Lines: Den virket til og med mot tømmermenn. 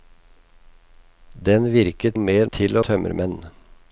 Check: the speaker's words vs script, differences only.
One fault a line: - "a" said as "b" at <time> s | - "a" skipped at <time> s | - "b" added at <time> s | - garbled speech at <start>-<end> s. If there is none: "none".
- "til" skipped at 2.2 s
- "mot" said as "til" at 2.5 s